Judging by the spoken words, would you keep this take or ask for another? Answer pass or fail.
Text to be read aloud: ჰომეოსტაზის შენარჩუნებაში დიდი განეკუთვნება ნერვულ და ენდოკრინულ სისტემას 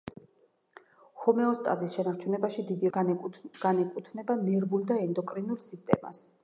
pass